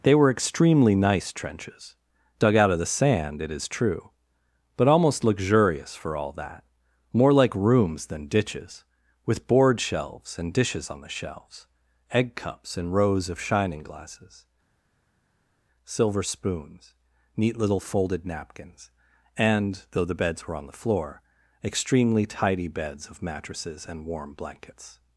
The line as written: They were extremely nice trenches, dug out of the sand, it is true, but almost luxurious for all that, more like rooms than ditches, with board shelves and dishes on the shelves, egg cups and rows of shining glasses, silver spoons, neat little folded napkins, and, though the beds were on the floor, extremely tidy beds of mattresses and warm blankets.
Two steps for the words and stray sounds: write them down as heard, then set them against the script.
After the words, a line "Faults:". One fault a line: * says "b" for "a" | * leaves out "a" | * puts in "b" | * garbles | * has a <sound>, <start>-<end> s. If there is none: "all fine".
They were extremely nice trenches, dug out of the sand, it is true, but almost luxurious for all that, more like rooms than ditches, with board shelves and dishes on the shelves, egg cups and rows of shining glasses, silver spoons, neat little folded napkins, and, though the beds were on the floor, extremely tidy beds of mattresses and warm blankets.
Faults:
all fine